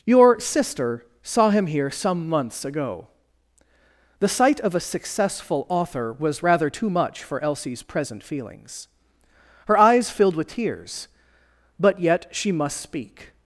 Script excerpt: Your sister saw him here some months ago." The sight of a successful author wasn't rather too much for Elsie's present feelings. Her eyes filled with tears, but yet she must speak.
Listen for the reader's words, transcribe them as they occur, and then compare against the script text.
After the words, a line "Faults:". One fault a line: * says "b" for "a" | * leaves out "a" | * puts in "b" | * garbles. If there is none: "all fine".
Your sister saw him here some months ago." The sight of a successful author was rather too much for Elsie's present feelings. Her eyes filled with tears, but yet she must speak.
Faults:
* says "was" for "wasn't"